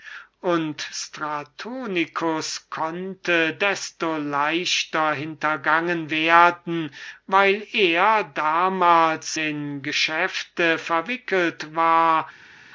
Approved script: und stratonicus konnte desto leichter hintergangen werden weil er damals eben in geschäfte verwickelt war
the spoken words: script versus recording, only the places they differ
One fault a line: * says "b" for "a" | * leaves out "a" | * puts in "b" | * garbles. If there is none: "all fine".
* leaves out "eben"